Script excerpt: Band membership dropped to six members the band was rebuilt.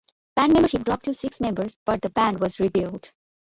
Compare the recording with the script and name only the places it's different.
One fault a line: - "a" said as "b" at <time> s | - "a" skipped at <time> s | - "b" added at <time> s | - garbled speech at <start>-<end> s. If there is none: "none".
- "but" added at 1.9 s